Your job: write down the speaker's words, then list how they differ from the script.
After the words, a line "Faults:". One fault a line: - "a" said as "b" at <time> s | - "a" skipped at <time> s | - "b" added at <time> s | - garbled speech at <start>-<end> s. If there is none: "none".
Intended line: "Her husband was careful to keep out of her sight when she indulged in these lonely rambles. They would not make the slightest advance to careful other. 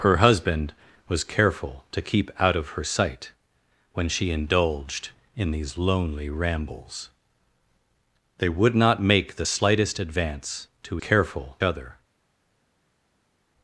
"Her husband was careful to keep out of her sight when she indulged in these lonely rambles. They would not make the slightest advance to careful other.
Faults:
none